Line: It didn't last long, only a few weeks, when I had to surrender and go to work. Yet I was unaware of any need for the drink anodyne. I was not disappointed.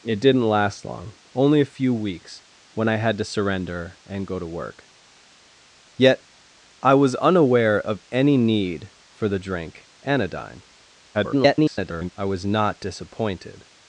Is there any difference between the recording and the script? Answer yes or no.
yes